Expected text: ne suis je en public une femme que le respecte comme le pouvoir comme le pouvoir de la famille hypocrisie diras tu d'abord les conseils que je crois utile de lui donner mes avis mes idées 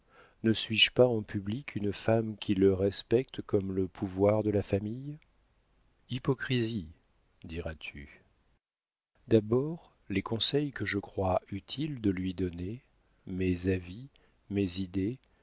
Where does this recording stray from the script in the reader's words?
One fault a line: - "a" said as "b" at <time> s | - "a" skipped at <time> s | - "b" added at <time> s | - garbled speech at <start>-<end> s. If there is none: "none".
- "pas" added at 0.9 s
- "que" said as "qui" at 2.4 s
- "comme le pouvoir" skipped at 4.4 s